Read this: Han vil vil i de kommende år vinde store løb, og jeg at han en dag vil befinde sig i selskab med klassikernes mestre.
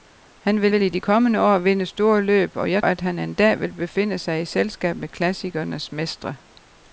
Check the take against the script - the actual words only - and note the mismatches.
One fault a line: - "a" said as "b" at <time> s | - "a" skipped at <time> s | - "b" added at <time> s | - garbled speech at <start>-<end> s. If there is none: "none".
none